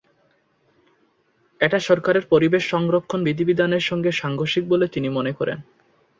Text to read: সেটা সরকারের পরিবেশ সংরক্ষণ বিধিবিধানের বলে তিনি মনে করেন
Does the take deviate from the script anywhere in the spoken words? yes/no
yes